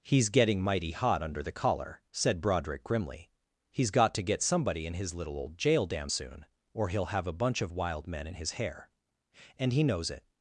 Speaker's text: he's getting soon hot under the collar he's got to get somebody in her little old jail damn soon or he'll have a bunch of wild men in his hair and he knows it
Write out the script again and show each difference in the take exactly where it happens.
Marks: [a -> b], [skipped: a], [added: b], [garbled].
he's getting [soon -> mighty] hot under the collar [added: said broderick grimly] he's got to get somebody in [her -> his] little old jail damn soon or he'll have a bunch of wild men in his hair and he knows it